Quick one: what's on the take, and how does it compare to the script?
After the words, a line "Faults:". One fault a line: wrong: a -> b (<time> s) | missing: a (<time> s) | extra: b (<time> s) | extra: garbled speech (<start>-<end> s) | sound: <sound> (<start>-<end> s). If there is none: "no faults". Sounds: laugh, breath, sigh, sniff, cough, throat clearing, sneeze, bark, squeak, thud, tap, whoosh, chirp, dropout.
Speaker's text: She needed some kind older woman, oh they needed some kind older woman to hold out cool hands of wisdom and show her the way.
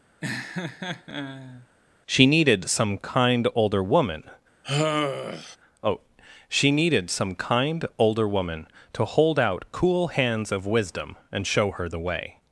She needed some kind older woman, oh she needed some kind older woman to hold out cool hands of wisdom and show her the way.
Faults:
sound: laugh (0.2-1.7 s)
sound: sigh (4.6-5.6 s)
wrong: they -> she (6.5 s)